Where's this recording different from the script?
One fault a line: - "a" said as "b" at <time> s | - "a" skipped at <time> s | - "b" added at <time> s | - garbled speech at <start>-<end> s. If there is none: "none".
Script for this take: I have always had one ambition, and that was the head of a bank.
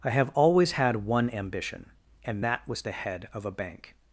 none